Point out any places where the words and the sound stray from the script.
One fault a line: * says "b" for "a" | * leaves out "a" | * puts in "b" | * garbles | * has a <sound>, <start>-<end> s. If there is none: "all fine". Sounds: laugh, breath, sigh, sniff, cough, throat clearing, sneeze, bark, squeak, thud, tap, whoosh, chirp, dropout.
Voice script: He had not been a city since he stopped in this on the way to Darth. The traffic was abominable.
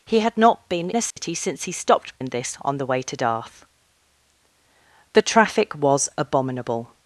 * has a dropout, 1.1-1.2 s